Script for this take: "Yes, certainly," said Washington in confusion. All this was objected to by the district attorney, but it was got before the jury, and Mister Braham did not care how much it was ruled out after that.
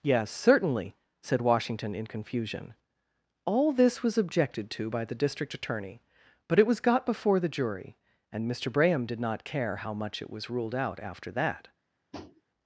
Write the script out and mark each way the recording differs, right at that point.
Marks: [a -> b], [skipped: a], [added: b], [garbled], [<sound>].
"Yes, certainly," said Washington in confusion. All this was objected to by the district attorney, but it was got before the jury, and Mister Braham did not care how much it was ruled out after that. [tap]